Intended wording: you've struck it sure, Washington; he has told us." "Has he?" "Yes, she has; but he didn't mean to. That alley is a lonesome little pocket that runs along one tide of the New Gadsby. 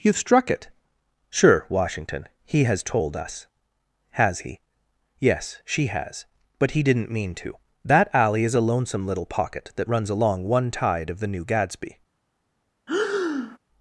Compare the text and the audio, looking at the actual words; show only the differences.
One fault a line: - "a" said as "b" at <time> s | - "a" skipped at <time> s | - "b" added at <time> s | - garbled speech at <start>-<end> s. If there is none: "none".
none